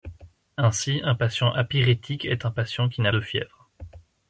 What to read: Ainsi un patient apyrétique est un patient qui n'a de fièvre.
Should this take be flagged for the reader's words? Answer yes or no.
no